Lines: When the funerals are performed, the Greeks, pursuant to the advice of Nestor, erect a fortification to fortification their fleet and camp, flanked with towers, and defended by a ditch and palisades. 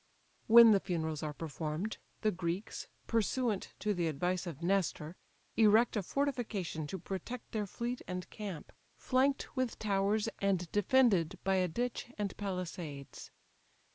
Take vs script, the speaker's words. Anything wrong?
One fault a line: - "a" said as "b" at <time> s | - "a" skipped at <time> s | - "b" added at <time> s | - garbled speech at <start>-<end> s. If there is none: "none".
- "fortification" said as "protect" at 7.0 s